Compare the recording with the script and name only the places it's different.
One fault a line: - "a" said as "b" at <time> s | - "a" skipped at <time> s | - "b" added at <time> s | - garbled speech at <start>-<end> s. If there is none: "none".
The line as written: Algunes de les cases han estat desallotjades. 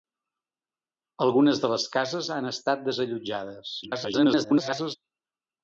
- garbled speech at 3.8-5.0 s